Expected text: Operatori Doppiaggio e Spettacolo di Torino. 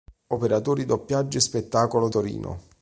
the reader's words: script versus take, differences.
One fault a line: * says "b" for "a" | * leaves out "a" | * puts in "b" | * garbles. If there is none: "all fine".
* leaves out "di"